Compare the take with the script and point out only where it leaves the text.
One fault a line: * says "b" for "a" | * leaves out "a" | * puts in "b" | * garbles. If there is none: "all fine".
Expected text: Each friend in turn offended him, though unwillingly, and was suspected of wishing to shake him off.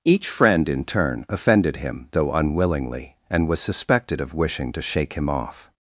all fine